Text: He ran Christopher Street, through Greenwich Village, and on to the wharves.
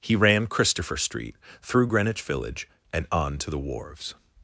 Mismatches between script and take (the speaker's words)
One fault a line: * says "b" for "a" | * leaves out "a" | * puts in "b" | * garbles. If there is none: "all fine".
all fine